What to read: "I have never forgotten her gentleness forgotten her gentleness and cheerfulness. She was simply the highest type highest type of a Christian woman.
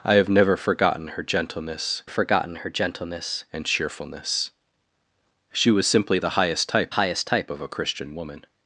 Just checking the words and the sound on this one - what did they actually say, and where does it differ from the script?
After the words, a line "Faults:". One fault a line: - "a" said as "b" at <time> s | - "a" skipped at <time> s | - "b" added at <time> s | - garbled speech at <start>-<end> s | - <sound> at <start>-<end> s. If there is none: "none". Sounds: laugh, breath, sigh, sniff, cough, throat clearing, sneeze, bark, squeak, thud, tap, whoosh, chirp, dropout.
"I have never forgotten her gentleness forgotten her gentleness and cheerfulness. She was simply the highest type highest type of a Christian woman.
Faults:
none